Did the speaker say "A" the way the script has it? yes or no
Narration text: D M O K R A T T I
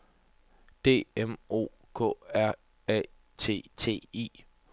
yes